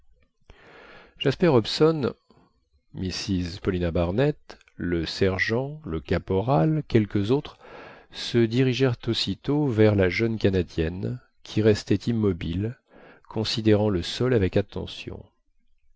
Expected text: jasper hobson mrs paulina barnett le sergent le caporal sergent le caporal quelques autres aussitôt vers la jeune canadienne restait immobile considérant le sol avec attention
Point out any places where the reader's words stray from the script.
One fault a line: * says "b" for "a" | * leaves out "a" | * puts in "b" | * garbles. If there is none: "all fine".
* says "quelques autres se dirigèrent" for "sergent le caporal quelques autres"
* puts in "qui"